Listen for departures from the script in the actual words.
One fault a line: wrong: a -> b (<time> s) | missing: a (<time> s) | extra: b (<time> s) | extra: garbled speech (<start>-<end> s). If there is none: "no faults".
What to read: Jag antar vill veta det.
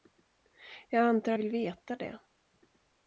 no faults